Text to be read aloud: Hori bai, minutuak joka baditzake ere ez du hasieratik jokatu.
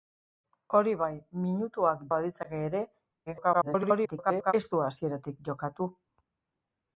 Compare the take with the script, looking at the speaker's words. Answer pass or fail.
fail